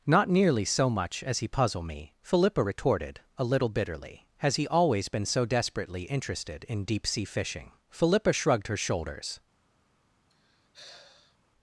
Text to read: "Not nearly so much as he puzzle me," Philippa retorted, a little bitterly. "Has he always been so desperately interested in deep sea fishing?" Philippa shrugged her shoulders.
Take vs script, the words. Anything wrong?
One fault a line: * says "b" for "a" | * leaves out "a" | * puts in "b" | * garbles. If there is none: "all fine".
all fine